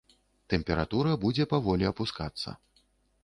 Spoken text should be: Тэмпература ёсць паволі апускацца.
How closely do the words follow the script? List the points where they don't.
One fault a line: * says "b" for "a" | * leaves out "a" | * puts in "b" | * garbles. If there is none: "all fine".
* says "будзе" for "ёсць"